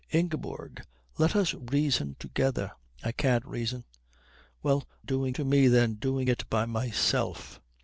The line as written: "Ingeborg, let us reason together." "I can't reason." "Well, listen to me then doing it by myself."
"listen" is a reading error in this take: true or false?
true